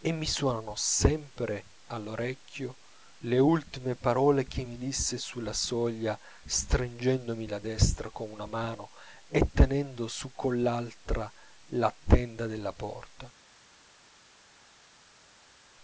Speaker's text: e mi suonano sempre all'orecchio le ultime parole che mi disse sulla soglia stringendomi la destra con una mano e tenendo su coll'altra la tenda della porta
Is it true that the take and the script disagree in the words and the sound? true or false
false